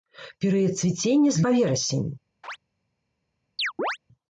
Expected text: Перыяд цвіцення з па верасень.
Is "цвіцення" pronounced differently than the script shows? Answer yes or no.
no